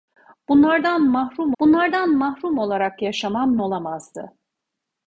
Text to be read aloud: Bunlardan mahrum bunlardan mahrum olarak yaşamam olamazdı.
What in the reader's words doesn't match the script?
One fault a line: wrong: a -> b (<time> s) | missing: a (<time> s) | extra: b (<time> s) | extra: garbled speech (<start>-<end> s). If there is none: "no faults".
no faults